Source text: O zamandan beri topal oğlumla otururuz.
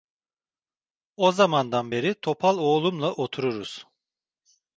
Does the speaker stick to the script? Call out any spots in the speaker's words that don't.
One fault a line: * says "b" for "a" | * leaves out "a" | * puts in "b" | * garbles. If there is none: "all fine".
all fine